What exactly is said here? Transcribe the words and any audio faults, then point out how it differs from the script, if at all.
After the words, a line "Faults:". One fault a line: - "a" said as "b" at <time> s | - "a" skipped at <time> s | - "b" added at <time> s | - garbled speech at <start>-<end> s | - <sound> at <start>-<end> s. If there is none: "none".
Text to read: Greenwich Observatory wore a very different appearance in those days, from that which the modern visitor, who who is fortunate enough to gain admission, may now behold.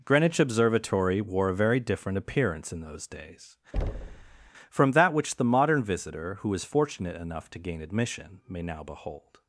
Greenwich Observatory wore a very different appearance in those days, from that which the modern visitor, who is fortunate enough to gain admission, may now behold.
Faults:
- thud at 3.7-4.5 s
- "who" skipped at 6.5 s